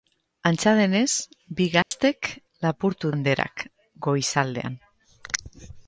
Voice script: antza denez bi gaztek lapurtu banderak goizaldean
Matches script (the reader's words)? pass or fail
pass